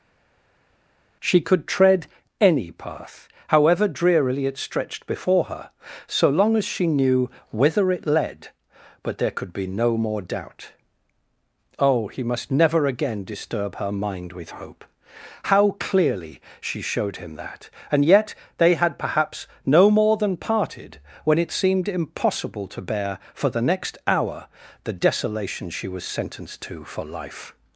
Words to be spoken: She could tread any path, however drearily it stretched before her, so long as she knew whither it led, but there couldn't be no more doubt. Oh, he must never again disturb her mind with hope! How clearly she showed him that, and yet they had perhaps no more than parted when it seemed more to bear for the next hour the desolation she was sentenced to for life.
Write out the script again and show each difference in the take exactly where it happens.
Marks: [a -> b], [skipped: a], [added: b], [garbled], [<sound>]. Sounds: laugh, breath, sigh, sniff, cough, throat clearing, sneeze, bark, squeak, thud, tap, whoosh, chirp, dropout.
She could tread any path, however drearily it stretched before her, so long as she knew whither it led, but there [couldn't -> could] be no more doubt. Oh, he must never again disturb her mind with hope! How clearly she showed him that, and yet they had perhaps no more than parted when it seemed [more -> impossible] to bear for the next hour the desolation she was sentenced to for life.